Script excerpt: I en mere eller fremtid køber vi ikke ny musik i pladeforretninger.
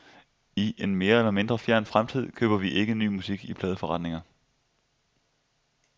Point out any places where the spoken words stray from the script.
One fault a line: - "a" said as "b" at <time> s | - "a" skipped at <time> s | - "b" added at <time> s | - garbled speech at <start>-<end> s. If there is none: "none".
- "mindre fjern" added at 1.3 s